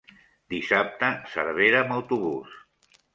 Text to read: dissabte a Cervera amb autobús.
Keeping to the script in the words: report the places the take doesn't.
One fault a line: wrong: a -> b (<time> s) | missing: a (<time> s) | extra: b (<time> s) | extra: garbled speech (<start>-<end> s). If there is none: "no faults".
no faults